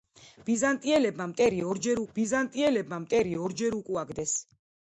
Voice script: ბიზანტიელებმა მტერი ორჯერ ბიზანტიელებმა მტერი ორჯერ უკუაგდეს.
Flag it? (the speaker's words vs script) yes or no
no